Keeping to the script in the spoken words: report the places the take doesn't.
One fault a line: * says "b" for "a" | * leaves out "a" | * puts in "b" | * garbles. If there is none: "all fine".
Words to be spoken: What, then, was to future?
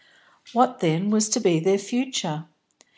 * puts in "be their"